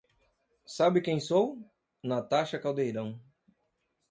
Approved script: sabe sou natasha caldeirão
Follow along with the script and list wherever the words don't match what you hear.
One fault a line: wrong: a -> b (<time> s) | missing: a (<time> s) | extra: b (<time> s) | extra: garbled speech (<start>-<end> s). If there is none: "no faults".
extra: quem (1.0 s)